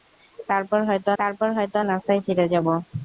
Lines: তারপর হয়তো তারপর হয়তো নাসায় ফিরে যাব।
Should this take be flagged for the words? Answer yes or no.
no